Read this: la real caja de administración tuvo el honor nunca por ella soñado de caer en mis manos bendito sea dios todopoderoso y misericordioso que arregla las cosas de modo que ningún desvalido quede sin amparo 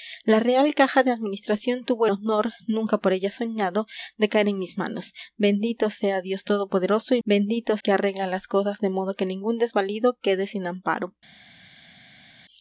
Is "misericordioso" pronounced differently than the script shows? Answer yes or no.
yes